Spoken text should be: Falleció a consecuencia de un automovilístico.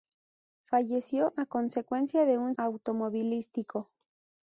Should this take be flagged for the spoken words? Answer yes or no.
no